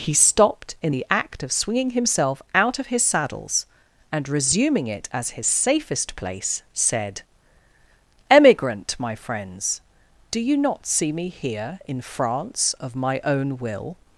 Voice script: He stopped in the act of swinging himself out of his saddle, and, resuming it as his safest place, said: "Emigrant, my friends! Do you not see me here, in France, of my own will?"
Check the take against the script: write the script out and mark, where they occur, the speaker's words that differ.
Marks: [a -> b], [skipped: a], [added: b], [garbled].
He stopped in the act of swinging himself out of his [saddle, -> saddles] and, resuming it as his safest place, said: "Emigrant, my friends! Do you not see me here, in France, of my own will?"